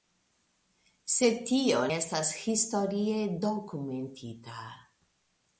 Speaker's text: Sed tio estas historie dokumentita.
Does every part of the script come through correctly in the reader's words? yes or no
yes